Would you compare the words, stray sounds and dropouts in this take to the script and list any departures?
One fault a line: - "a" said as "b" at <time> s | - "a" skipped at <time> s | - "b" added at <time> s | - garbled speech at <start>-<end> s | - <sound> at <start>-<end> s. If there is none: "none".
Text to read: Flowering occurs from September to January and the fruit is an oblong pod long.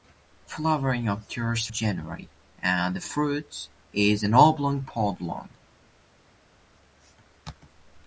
- "from September to" skipped at 1.7 s